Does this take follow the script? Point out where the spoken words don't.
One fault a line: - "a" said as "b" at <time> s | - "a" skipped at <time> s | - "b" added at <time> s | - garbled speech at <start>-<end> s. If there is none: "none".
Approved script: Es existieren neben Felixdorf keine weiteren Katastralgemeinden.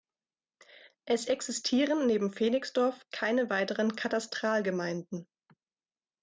none